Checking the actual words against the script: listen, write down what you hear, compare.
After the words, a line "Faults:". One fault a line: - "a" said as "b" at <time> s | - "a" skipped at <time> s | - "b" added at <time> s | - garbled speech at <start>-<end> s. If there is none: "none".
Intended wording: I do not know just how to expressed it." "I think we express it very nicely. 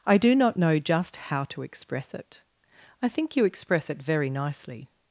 I do not know just how to express it." "I think you express it very nicely.
Faults:
- "expressed" said as "express" at 1.6 s
- "we" said as "you" at 3.4 s